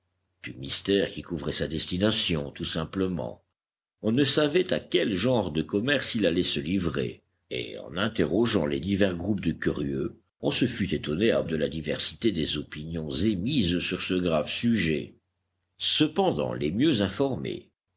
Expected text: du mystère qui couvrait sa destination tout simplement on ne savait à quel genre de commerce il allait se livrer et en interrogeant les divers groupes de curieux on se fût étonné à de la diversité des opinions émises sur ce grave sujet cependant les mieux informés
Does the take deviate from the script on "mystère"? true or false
false